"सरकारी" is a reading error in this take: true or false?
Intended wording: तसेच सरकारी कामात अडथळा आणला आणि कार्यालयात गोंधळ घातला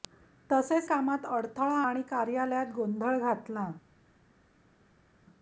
true